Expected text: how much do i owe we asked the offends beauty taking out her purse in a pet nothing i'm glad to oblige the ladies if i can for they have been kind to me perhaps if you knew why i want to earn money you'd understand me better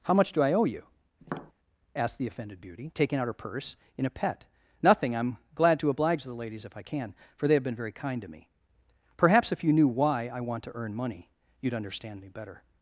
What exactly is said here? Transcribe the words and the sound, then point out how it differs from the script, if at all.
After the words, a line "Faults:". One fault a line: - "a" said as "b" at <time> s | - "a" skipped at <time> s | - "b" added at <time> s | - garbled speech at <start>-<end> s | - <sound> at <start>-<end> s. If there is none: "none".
how much do i owe you asked the offended beauty taking out her purse in a pet nothing i'm glad to oblige the ladies if i can for they have been very kind to me perhaps if you knew why i want to earn money you'd understand me better
Faults:
- "we" said as "you" at 0.7 s
- tap at 1.2-1.5 s
- "offends" said as "offended" at 2.3 s
- "very" added at 7.8 s